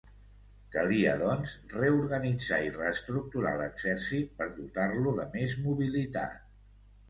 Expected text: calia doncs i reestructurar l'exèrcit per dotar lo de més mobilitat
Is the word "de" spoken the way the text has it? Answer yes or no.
yes